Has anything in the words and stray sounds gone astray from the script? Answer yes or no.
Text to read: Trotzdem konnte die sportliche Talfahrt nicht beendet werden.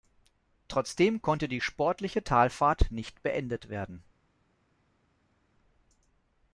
no